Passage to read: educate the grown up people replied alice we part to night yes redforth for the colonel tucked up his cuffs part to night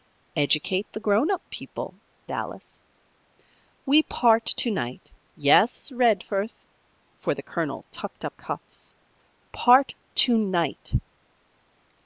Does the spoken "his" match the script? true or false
false